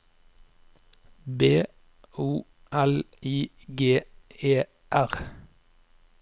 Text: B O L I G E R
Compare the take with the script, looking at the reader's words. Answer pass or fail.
pass